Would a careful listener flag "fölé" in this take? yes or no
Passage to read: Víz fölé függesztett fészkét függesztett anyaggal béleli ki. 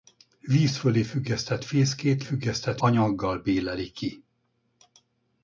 no